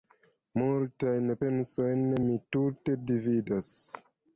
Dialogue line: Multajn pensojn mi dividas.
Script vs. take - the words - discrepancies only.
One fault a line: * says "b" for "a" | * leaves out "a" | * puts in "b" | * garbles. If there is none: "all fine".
* puts in "tute"